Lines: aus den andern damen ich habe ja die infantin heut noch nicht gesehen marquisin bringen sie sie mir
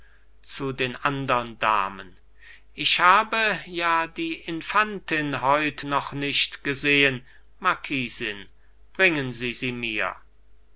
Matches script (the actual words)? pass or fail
fail